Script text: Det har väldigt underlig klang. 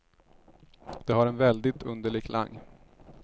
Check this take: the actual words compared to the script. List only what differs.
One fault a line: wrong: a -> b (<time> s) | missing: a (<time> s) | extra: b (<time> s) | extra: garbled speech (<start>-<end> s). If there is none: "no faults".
extra: en (1.3 s)